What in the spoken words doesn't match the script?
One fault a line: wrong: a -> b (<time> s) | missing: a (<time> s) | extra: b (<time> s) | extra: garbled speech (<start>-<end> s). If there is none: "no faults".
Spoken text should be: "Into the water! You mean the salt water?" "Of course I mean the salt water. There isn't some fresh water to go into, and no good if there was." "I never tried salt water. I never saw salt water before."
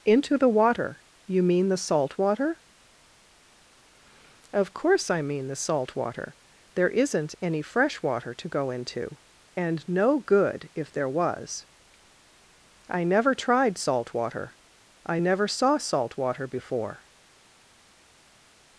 wrong: some -> any (7.4 s)